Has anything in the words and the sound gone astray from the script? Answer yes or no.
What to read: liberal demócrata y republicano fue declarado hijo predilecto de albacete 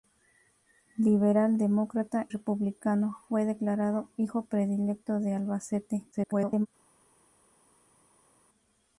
yes